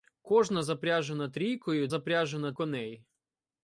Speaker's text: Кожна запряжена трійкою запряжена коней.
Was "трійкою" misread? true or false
false